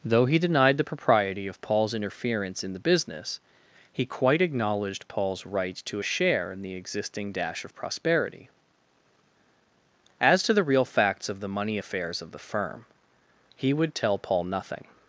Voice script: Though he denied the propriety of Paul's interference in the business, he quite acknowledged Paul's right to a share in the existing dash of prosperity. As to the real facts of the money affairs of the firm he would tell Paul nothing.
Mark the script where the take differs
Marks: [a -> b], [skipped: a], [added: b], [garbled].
Though he denied the propriety of Paul's interference in the business, he quite acknowledged Paul's right to a share in the existing dash of prosperity. As to the real facts of the money affairs of the firm he would tell Paul nothing.